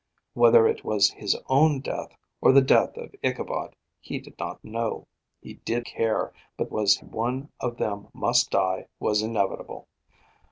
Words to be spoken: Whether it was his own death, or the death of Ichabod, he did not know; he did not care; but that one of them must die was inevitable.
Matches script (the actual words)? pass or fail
fail